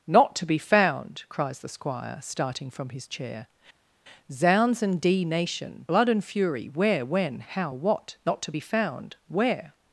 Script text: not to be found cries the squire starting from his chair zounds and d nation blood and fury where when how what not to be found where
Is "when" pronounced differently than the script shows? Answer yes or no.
no